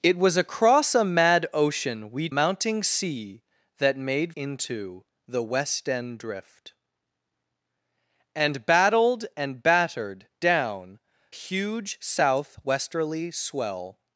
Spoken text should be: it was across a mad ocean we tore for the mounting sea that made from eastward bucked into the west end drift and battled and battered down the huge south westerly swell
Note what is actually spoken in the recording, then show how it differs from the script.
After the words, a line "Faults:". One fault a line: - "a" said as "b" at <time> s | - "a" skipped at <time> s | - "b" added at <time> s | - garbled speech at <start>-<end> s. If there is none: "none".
it was across a mad ocean we mounting sea that made into the west end drift and battled and battered down huge south westerly swell
Faults:
- "tore for the" skipped at 2.3 s
- "from eastward bucked" skipped at 4.3 s
- "the" skipped at 11.0 s